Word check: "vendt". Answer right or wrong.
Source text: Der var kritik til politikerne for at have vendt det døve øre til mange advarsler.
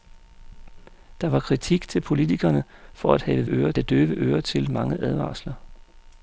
wrong